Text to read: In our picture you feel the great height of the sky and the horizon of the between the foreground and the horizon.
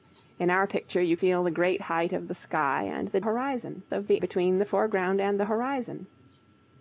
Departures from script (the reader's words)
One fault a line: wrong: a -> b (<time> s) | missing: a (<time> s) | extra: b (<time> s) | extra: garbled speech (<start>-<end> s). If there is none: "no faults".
no faults